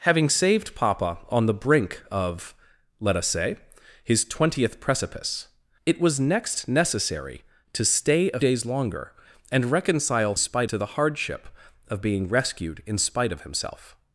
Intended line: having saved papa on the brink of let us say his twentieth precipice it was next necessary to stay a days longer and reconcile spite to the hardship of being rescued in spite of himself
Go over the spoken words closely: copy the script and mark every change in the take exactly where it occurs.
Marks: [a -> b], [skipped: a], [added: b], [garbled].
having saved papa on the brink of let us say his twentieth precipice it was next necessary to stay a days longer and reconcile spite to the hardship of being rescued in spite of himself